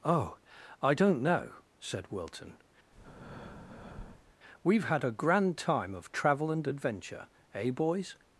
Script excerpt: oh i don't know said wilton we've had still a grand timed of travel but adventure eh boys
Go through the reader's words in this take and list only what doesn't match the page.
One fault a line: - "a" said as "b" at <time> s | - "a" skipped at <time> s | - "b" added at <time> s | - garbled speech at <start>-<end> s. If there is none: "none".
- "still" skipped at 5.0 s
- "timed" said as "time" at 5.6 s
- "but" said as "and" at 6.5 s